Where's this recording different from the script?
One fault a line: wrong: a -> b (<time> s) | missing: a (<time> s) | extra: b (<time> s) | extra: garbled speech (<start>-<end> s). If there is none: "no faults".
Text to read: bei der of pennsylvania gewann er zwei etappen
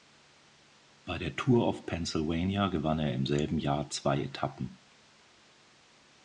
extra: tour (1.4 s)
extra: im selben jahr (3.1 s)